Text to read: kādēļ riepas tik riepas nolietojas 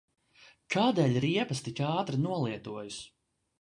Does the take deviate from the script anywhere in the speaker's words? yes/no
yes